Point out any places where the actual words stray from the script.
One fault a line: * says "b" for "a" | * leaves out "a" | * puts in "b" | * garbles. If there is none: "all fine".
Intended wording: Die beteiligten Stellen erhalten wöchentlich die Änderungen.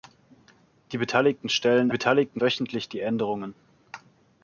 * says "beteiligten" for "erhalten"